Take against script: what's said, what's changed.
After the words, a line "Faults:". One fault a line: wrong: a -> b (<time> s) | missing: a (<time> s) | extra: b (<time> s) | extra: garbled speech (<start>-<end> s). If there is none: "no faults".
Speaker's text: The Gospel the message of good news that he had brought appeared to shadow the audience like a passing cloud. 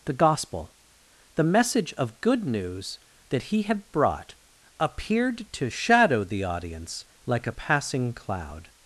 The Gospel the message of good news that he had brought appeared to shadow the audience like a passing cloud.
Faults:
no faults